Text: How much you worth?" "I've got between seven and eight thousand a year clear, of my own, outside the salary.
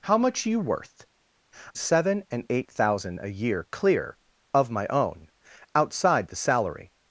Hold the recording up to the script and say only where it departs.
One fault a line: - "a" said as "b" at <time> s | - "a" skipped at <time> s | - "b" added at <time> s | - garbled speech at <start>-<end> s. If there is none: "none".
- "I've got between" skipped at 1.1 s